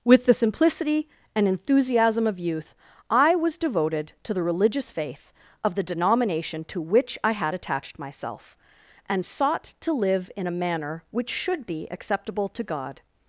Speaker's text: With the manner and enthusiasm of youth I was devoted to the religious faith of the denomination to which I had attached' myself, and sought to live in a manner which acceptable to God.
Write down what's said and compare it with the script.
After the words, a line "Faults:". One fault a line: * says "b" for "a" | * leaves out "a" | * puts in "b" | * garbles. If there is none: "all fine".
With the simplicity and enthusiasm of youth I was devoted to the religious faith of the denomination to which I had attached' myself, and sought to live in a manner which should be acceptable to God.
Faults:
* says "simplicity" for "manner"
* puts in "should be"